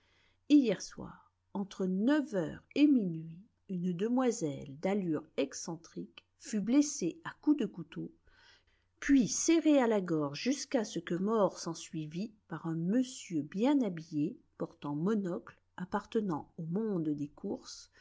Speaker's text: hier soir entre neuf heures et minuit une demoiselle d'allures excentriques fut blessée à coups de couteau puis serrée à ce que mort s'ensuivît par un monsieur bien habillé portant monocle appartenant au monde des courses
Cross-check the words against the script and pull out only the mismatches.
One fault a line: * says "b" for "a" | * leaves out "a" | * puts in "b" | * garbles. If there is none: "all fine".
* puts in "la gorge jusqu'à"